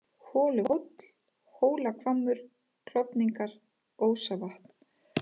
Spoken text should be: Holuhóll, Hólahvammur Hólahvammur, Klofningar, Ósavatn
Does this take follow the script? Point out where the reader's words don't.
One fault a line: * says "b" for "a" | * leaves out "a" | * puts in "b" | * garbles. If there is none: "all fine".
* leaves out "Hólahvammur"